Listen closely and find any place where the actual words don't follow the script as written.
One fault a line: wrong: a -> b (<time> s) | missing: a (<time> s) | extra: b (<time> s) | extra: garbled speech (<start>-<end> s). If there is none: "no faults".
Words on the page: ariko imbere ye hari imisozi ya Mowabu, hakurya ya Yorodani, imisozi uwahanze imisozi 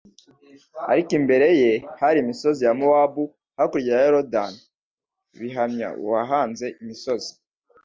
wrong: imisozi -> bihamya (5.4 s)